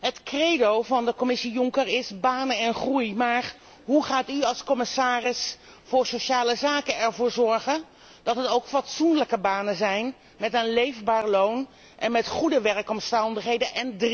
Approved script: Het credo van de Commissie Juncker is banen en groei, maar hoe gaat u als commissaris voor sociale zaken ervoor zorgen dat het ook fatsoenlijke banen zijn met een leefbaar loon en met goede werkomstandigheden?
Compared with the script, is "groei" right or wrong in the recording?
right